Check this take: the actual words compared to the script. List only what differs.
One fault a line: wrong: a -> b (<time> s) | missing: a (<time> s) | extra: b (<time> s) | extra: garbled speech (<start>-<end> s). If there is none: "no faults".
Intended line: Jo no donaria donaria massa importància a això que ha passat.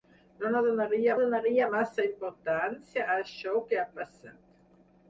no faults